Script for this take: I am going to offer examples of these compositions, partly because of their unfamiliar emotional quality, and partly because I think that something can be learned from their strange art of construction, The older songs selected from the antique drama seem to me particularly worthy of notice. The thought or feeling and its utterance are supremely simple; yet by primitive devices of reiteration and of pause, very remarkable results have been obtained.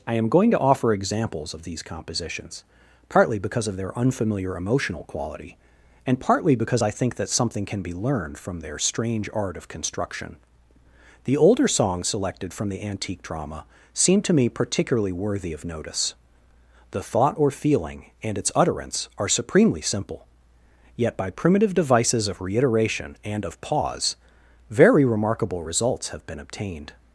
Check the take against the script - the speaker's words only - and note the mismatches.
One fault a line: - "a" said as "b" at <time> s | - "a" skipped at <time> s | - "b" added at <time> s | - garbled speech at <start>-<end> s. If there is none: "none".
none